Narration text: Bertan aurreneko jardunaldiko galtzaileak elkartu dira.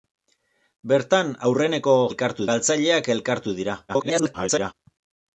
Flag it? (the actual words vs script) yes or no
yes